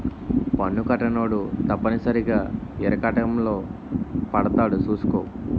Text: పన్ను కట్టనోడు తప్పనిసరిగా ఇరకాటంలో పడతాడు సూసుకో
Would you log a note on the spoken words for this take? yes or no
no